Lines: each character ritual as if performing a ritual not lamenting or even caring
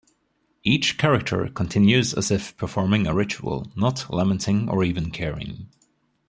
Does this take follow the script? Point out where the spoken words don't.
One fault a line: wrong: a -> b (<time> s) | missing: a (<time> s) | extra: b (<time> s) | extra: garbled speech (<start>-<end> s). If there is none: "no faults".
wrong: ritual -> continues (1.5 s)